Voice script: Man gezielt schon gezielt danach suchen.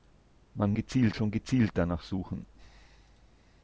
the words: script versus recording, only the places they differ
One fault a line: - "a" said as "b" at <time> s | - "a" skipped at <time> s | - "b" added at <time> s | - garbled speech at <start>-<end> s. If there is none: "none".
none